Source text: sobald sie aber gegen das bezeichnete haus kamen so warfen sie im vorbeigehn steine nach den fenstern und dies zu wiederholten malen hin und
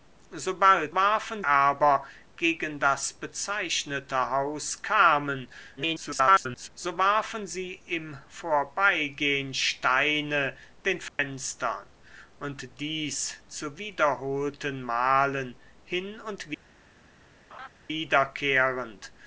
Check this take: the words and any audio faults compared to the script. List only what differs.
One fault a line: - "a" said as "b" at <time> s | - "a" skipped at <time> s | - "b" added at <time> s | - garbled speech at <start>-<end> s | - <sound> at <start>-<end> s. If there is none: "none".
- "sie" said as "warfen" at 0.9 s
- garbled speech at 5.8-6.7 s
- "nach" skipped at 10.6 s
- dropout at 11.1-11.2 s
- laugh at 17.5-17.7 s